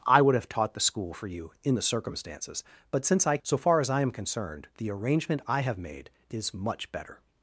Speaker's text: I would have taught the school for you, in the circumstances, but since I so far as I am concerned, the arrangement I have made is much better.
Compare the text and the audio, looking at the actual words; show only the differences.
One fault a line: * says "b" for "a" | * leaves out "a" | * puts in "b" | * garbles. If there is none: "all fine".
all fine